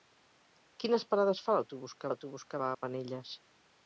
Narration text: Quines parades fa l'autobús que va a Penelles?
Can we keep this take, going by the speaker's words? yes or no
no